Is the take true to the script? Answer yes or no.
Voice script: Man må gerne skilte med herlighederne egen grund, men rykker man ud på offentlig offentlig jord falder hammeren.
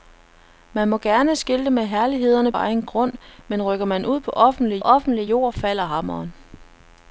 yes